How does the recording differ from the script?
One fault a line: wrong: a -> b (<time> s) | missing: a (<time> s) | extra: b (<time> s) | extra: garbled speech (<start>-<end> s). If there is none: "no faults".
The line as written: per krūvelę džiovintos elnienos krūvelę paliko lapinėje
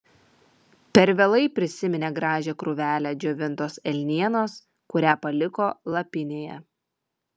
extra: vėlai prisiminė gražią (1.2 s)
wrong: krūvelę -> kurią (5.0 s)